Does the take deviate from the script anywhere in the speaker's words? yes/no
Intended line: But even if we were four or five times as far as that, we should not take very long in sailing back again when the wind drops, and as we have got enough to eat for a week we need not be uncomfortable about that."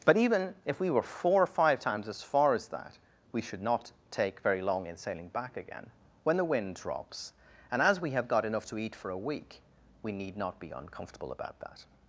no